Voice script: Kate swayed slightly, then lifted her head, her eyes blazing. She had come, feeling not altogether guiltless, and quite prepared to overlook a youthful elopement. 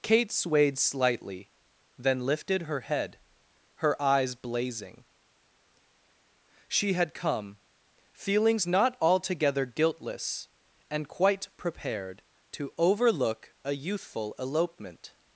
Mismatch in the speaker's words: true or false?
true